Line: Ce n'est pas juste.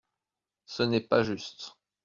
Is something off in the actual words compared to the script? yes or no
no